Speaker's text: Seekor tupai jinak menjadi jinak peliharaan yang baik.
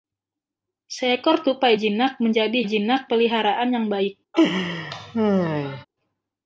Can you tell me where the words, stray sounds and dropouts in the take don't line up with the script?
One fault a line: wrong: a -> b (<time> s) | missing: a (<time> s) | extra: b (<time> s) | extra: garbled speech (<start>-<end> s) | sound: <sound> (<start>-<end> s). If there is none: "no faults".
sound: laugh (4.3-5.9 s)